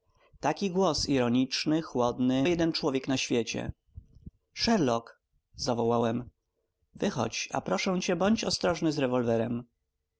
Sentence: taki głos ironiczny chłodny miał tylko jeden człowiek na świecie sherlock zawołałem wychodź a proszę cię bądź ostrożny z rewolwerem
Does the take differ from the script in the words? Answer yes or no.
yes